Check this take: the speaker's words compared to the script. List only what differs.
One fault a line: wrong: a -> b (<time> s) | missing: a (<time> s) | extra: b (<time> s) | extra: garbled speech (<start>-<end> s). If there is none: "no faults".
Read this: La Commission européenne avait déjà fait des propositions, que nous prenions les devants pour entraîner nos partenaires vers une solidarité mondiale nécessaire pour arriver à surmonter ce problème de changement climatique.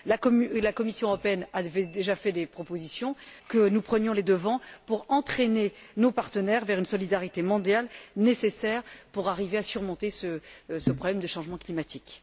no faults